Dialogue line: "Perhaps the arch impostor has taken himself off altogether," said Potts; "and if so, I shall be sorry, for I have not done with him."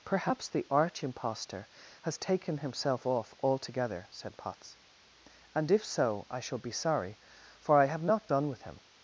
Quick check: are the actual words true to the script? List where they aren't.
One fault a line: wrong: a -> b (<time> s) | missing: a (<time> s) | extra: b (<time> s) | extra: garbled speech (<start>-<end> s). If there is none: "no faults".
no faults